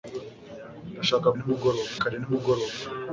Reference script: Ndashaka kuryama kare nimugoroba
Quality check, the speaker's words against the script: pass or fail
fail